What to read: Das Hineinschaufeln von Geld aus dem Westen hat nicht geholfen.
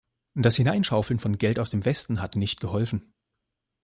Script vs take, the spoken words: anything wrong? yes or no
no